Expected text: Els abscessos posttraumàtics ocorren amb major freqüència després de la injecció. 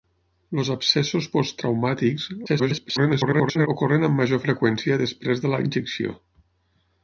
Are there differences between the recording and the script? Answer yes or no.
yes